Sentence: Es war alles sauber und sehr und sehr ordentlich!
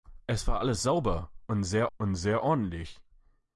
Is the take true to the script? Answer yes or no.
yes